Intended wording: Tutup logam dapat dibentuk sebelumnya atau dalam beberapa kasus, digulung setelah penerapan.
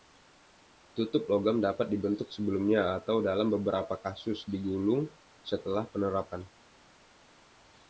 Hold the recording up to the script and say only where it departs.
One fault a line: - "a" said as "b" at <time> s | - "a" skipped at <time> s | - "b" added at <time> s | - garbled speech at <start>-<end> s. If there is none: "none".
none